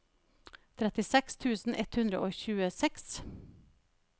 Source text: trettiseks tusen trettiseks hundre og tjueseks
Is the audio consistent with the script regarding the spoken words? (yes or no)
no